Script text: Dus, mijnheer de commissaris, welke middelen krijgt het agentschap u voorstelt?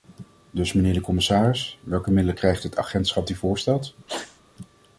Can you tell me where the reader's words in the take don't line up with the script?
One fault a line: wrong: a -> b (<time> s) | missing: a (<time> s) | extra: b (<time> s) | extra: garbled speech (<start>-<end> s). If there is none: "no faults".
no faults